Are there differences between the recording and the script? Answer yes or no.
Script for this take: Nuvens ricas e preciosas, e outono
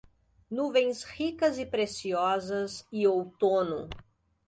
no